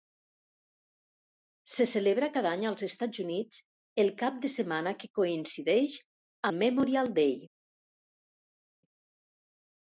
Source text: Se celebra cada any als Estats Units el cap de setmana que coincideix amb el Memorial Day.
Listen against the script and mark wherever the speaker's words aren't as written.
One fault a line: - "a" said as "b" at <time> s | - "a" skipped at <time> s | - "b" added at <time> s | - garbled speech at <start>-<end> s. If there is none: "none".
- "amb" skipped at 6.0 s